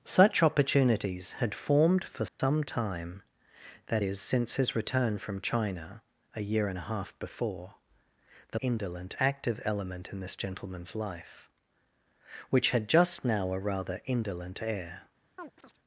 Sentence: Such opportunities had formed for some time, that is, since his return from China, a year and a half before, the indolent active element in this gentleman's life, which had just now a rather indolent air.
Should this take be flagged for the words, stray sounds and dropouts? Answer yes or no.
yes